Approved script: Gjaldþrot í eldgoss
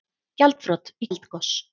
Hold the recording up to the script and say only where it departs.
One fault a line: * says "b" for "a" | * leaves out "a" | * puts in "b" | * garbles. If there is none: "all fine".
all fine